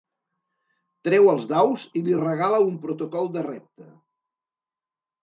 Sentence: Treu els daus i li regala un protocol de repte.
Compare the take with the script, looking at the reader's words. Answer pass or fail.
pass